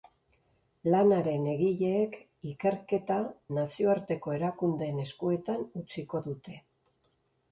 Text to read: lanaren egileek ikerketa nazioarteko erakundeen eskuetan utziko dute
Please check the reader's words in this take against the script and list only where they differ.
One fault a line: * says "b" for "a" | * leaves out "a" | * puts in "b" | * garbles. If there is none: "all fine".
all fine